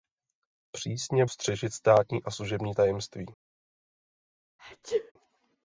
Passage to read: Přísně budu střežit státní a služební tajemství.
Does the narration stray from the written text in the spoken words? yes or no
yes